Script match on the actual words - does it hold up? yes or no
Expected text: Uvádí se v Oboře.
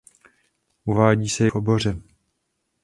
yes